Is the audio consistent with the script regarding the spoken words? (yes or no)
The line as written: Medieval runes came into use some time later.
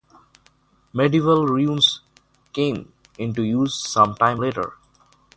yes